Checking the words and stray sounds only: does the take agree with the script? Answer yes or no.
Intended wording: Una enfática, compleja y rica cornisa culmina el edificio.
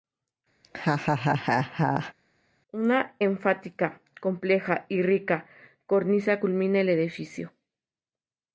no